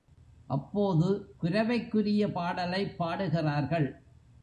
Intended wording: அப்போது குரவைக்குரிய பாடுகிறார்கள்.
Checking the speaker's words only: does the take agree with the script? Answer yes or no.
no